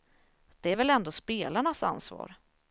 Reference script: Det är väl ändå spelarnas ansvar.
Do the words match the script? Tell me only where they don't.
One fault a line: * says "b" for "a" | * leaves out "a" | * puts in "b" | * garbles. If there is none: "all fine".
all fine